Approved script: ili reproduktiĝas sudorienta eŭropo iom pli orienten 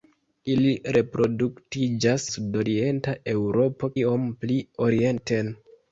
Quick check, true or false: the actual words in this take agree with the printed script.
true